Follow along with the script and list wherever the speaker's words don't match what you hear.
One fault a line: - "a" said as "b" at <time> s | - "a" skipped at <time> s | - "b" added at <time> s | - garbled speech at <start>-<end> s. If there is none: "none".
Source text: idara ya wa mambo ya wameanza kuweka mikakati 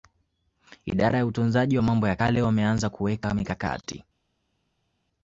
- "utunzaji" added at 1.2 s
- "kale" added at 2.1 s